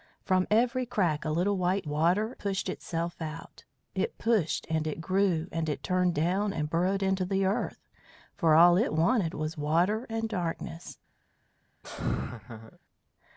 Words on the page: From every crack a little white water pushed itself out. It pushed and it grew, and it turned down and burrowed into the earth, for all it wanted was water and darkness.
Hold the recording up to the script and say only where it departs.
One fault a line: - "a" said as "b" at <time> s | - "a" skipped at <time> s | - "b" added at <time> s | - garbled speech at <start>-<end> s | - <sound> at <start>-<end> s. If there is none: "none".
- laugh at 11.8-12.8 s